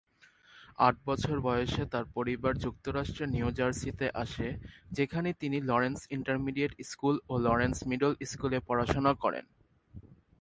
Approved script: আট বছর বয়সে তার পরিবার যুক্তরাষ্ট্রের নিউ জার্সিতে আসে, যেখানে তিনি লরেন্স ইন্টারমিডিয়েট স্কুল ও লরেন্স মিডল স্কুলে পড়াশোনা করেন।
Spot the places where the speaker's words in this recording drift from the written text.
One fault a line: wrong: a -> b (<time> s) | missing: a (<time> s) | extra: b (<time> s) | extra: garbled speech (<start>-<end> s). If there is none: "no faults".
no faults